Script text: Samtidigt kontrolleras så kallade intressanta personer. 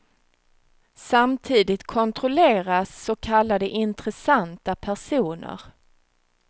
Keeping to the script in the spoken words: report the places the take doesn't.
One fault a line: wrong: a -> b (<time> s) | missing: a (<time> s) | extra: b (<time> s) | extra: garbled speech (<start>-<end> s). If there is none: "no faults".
no faults